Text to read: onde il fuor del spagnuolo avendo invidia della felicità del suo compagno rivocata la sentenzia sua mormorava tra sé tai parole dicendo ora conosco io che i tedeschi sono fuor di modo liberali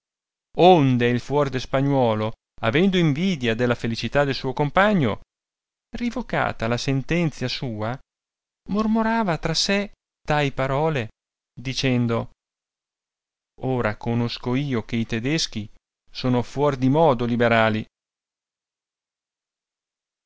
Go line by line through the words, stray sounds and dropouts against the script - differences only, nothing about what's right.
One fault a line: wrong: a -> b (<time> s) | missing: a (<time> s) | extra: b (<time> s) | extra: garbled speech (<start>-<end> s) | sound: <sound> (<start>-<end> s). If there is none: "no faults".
no faults